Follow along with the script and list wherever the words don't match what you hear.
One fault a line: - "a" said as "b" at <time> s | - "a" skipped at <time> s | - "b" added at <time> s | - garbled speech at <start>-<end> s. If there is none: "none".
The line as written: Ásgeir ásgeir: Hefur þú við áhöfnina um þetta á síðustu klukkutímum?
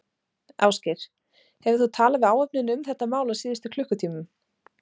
- "ásgeir" skipped at 1.0 s
- "talað" added at 2.0 s
- "mál" added at 3.1 s